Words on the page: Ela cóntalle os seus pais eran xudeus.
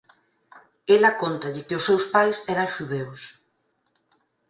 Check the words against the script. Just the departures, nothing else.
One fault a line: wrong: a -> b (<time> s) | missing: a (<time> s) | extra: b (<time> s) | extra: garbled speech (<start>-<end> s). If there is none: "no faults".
extra: que (1.7 s)